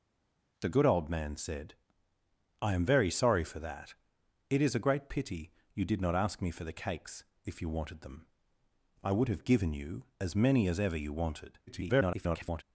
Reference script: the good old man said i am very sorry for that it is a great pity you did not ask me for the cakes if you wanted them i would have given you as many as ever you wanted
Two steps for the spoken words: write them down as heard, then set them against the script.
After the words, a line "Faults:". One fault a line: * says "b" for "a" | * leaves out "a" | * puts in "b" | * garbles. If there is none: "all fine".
the good old man said i am very sorry for that it is a great pity you did not ask me for the cakes if you wanted them i would have given you as many as ever you wanted [garbled]
Faults:
* garbles